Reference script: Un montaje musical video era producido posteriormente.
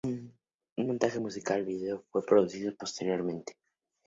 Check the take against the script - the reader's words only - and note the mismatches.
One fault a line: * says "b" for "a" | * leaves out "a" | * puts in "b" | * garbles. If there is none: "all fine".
* says "fue" for "era"